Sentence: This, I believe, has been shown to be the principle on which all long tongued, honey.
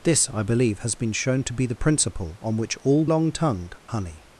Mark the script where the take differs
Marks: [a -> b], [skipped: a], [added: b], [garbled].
This, I believe, has been shown to be the principle on which all long tongued, honey.